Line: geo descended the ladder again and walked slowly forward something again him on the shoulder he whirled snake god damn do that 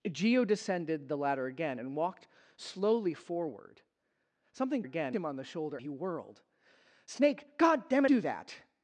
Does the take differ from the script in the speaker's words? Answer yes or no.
no